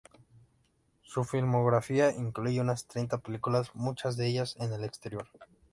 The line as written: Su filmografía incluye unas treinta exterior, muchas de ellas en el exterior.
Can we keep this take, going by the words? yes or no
no